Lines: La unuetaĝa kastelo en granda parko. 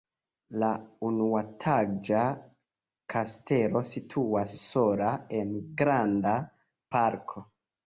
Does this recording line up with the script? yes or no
no